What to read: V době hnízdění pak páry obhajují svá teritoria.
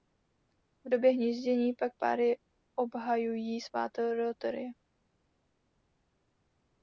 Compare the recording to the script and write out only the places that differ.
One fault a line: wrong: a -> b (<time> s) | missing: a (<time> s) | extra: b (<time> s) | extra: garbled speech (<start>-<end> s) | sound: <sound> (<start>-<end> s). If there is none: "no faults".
no faults